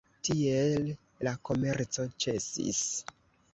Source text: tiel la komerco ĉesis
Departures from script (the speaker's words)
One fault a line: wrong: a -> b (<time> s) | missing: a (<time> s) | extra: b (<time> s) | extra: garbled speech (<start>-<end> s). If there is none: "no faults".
no faults